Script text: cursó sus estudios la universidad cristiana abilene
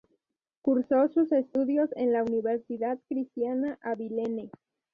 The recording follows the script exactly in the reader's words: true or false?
false